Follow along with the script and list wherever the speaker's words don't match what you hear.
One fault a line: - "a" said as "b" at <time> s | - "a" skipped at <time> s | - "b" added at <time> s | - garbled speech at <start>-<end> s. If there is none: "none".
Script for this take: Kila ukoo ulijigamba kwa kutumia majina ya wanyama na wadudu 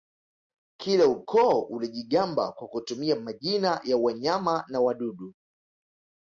none